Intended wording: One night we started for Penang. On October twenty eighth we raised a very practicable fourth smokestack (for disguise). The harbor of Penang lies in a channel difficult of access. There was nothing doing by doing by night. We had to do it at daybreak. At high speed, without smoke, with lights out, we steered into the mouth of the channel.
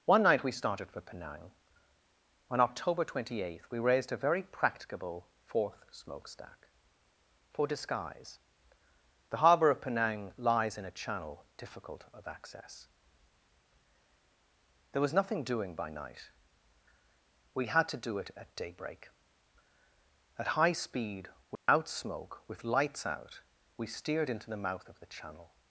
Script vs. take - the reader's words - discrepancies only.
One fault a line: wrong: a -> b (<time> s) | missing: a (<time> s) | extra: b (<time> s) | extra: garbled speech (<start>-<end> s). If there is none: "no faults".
missing: doing by (15.9 s)